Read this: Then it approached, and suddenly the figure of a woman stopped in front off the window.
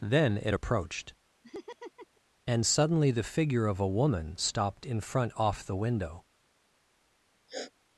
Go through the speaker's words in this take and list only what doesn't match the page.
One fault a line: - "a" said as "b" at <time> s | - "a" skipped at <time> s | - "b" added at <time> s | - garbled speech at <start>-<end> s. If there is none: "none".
none